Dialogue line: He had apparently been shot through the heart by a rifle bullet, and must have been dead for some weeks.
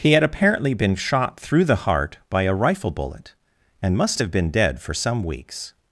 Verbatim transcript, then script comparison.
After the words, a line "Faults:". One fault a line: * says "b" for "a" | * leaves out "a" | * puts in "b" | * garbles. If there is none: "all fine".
He had apparently been shot through the heart by a rifle bullet, and must have been dead for some weeks.
Faults:
all fine